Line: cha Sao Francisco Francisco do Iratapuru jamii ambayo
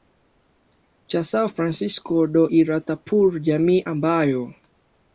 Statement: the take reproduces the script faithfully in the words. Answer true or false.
false